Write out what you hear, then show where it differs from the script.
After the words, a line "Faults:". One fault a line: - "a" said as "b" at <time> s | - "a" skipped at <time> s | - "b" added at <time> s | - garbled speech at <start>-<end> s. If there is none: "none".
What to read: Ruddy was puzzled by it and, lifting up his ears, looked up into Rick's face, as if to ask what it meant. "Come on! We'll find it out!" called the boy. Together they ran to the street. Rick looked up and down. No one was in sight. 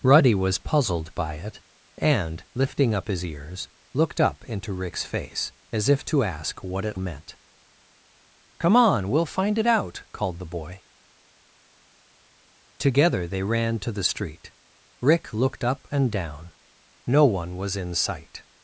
Ruddy was puzzled by it and, lifting up his ears, looked up into Rick's face, as if to ask what it meant. "Come on! We'll find it out!" called the boy. Together they ran to the street. Rick looked up and down. No one was in sight.
Faults:
none